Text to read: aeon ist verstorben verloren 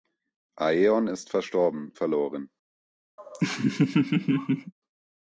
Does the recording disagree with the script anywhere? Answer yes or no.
no